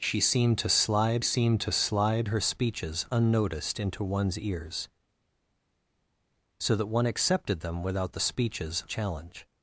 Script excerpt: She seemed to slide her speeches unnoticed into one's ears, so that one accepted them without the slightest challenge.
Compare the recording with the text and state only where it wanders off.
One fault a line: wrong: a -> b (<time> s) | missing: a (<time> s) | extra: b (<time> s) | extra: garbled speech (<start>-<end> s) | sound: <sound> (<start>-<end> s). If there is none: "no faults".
extra: seemed to slide (1.2 s)
wrong: slightest -> speeches (8.2 s)